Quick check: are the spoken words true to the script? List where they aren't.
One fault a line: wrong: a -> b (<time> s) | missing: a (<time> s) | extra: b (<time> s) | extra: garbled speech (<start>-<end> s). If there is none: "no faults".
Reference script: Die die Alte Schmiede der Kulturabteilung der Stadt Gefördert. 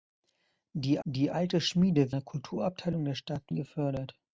no faults